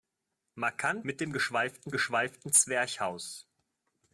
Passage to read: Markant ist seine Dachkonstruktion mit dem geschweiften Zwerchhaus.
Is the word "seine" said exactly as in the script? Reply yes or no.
no